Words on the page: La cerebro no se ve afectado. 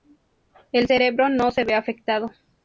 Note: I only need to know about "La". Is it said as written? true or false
false